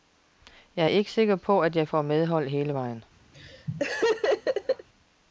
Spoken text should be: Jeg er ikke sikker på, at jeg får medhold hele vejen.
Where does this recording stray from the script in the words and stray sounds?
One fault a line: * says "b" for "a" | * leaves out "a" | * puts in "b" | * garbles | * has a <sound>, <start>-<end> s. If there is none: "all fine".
* has a laugh, 3.3-4.9 s